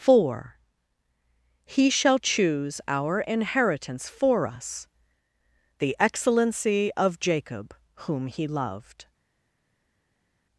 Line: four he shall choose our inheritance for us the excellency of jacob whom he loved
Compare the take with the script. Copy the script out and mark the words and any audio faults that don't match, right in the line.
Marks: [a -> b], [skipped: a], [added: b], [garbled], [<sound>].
four he shall choose our inheritance for us the excellency of jacob whom he loved